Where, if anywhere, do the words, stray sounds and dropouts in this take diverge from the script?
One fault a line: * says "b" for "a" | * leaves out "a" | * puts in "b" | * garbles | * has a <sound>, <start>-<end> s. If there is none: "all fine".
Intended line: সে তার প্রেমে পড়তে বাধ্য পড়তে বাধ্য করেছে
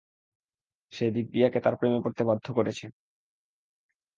* puts in "দিব্যিয়াকে"
* leaves out "পড়তে বাধ্য"